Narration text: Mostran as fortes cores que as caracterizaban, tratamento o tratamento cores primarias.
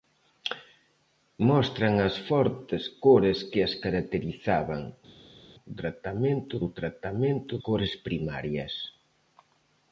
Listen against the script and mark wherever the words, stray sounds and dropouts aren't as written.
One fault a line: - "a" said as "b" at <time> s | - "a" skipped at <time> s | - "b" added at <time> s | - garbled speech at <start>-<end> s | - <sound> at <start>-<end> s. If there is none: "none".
none